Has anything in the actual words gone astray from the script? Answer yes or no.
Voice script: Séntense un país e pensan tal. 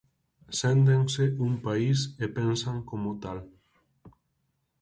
yes